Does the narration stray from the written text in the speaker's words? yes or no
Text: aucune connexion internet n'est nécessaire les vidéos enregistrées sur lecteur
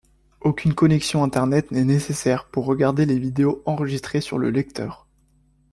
yes